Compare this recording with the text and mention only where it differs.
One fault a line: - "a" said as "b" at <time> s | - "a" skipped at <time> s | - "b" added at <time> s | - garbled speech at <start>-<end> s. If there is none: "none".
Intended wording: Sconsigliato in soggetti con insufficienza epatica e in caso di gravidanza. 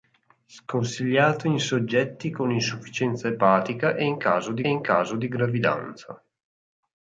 - "in caso di" added at 4.7 s